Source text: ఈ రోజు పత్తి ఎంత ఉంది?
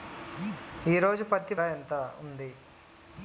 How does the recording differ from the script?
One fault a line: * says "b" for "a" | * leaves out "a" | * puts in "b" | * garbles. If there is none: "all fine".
all fine